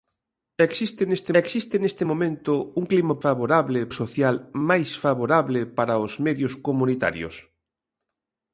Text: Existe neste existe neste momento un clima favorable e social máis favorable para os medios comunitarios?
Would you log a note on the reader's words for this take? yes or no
no